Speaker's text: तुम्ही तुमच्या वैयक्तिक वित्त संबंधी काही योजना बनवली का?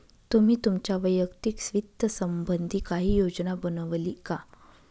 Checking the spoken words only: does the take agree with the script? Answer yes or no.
yes